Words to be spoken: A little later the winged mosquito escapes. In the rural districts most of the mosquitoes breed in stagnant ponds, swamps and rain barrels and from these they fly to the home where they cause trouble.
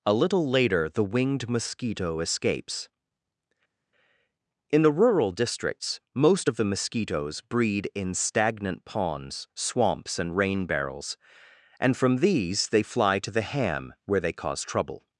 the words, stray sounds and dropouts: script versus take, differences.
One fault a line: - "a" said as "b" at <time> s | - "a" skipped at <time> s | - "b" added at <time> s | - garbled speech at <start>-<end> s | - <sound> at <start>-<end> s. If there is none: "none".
- "home" said as "ham" at 13.5 s